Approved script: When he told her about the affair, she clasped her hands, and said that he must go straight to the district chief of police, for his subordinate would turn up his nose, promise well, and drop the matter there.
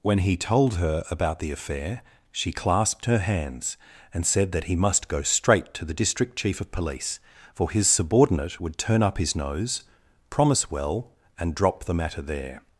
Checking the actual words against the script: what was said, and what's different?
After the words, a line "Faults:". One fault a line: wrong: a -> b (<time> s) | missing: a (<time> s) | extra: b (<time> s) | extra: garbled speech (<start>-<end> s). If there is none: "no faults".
When he told her about the affair, she clasped her hands, and said that he must go straight to the district chief of police, for his subordinate would turn up his nose, promise well, and drop the matter there.
Faults:
no faults